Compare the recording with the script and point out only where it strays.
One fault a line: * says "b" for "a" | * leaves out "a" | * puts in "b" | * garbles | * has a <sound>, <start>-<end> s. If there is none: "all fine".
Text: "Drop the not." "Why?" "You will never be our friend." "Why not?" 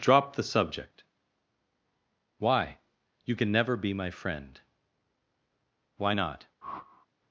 * says "subject" for "not"
* says "can" for "will"
* says "my" for "our"
* has a whoosh, 6.6-7.1 s